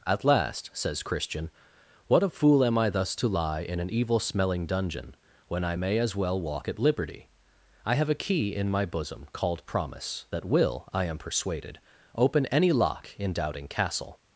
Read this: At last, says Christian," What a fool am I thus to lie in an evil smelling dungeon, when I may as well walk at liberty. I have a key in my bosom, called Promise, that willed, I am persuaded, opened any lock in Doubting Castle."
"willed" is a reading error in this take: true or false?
true